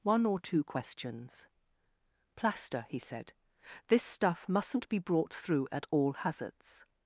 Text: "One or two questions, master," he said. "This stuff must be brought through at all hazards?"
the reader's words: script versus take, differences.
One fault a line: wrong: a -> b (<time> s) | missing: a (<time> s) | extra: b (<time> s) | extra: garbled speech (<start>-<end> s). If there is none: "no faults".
wrong: master -> plaster (2.4 s)
wrong: must -> mustn't (4.5 s)